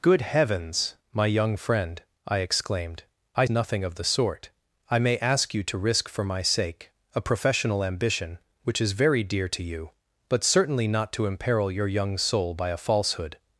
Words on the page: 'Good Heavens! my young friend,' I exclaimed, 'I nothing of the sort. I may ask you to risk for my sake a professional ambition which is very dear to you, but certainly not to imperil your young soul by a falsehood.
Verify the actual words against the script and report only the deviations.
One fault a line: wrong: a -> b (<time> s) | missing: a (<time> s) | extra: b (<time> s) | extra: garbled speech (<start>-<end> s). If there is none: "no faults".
no faults